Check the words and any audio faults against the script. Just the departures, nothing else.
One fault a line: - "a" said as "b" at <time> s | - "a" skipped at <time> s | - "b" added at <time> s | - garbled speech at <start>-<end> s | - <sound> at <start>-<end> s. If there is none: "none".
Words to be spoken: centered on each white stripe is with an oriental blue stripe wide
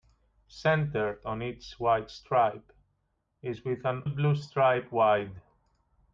- "oriental" skipped at 4.0 s